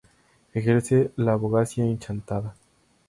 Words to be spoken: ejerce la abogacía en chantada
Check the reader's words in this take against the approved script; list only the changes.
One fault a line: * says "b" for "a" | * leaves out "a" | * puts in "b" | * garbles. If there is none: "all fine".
all fine